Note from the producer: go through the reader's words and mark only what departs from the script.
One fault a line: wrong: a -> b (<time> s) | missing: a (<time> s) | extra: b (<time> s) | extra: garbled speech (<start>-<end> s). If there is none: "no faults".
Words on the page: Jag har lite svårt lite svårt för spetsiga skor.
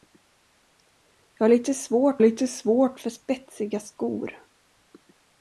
no faults